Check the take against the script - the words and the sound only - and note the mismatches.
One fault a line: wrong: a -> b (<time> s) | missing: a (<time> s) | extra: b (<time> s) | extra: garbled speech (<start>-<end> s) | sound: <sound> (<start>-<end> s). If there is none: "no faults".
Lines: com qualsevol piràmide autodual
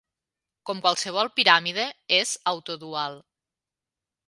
extra: és (2.2 s)